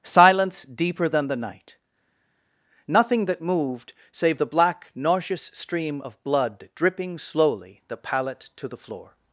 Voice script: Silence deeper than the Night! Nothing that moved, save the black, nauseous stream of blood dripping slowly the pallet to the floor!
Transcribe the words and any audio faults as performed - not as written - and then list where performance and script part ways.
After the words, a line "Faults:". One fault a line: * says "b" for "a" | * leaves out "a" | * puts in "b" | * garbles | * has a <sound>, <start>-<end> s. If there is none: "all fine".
Silence deeper than the Night! Nothing that moved, save the black, nauseous stream of blood dripping slowly the pallet to the floor!
Faults:
all fine